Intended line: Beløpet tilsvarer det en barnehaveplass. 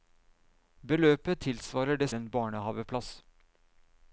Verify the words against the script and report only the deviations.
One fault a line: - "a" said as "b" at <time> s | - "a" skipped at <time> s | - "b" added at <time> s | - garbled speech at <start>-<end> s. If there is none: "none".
none